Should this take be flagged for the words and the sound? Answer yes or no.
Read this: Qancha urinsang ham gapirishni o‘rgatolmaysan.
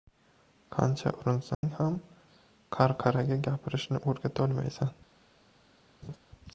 yes